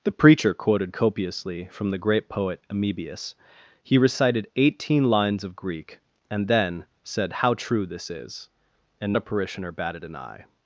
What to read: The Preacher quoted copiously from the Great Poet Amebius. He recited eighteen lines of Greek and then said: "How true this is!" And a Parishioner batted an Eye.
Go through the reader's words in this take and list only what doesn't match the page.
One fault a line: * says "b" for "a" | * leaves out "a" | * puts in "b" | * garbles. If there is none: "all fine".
all fine